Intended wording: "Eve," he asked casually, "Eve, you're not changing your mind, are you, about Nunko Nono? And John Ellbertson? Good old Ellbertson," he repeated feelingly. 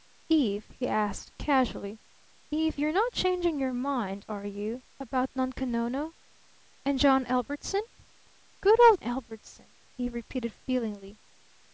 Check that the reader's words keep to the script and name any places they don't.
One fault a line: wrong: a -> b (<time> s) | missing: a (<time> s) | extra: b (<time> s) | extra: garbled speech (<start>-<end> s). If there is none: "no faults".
no faults